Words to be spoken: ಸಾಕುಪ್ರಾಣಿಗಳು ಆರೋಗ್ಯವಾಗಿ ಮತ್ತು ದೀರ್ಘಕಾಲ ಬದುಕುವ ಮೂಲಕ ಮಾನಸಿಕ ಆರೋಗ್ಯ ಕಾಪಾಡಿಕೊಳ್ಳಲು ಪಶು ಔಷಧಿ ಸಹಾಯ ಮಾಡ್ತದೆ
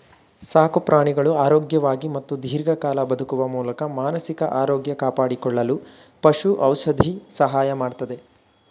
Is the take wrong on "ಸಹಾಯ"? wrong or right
right